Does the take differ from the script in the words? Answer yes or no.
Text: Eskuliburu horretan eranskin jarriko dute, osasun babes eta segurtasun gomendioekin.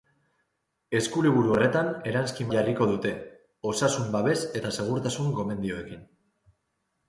no